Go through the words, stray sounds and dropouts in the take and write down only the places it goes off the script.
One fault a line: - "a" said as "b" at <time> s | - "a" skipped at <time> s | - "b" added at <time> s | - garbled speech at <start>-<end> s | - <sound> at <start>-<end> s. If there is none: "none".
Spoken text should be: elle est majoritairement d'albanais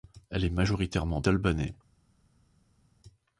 none